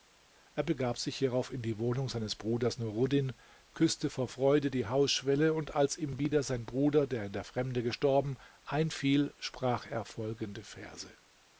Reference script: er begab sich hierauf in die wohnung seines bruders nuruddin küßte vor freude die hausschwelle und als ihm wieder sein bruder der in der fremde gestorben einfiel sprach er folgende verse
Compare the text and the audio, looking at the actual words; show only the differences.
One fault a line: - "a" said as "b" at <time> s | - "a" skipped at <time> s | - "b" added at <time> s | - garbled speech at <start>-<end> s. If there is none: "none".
none